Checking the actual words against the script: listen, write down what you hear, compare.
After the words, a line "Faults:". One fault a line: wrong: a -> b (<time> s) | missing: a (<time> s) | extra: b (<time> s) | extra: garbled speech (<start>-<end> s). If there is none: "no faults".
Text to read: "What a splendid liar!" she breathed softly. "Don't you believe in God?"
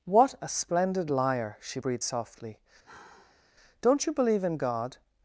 "What a splendid liar!" she breathed softly. "Don't you believe in God?"
Faults:
no faults